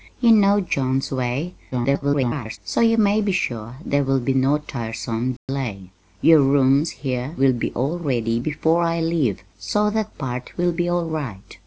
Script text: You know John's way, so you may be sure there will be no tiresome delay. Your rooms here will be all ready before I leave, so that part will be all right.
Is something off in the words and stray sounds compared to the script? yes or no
yes